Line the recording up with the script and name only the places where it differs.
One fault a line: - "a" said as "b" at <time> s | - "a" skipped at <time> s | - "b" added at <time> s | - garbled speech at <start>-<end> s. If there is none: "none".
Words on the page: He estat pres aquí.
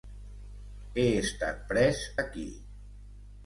none